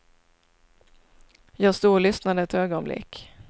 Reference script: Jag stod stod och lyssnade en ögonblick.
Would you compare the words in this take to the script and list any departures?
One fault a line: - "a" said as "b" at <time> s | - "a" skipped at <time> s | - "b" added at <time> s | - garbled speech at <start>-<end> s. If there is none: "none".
- "stod" skipped at 1.9 s
- "en" said as "ett" at 2.4 s